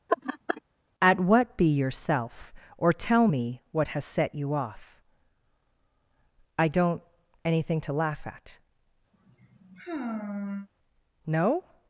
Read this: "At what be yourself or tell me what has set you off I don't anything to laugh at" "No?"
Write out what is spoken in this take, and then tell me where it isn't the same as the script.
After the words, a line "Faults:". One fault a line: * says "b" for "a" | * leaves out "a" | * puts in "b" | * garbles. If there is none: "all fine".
"At what be yourself or tell me what has set you off I don't anything to laugh at" "No?"
Faults:
all fine